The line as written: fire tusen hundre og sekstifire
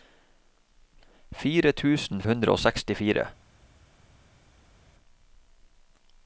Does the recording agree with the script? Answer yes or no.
yes